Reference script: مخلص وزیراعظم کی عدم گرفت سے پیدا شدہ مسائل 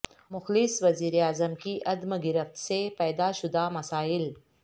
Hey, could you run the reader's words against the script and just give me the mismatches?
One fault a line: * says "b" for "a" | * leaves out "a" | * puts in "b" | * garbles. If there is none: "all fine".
all fine